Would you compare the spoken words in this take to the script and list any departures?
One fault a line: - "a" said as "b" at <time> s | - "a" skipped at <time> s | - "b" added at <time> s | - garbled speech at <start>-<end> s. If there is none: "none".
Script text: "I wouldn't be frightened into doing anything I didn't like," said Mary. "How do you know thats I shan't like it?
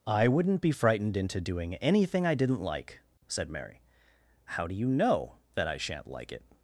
- "thats" said as "that" at 5.6 s